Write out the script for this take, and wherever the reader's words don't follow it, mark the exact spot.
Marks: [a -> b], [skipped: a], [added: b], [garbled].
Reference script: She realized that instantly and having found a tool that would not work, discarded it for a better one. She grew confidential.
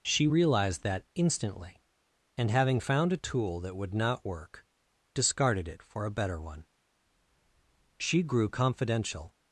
She realized that instantly and having found a tool that would not work, discarded it for a better one. She grew confidential.